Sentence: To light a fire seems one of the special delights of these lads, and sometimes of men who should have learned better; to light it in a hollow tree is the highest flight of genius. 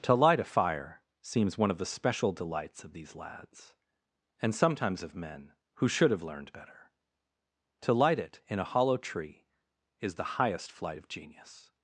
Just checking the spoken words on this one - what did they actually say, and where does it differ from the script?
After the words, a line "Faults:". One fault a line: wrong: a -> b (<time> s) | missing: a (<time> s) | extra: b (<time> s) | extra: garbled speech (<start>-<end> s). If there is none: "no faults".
To light a fire seems one of the special delights of these lads, and sometimes of men who should have learned better; to light it in a hollow tree is the highest flight of genius.
Faults:
no faults